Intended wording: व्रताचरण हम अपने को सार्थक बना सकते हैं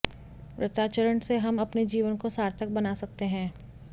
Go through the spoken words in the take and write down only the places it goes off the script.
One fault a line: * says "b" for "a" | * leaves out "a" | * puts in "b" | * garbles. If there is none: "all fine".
* puts in "से"
* puts in "जीवन"